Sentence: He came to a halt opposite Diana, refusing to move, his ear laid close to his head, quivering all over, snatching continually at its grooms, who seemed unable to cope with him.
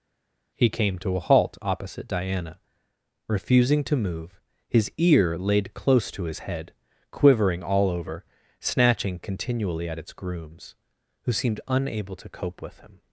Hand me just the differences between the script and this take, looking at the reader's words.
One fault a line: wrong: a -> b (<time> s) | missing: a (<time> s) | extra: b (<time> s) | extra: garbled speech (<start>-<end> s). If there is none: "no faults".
no faults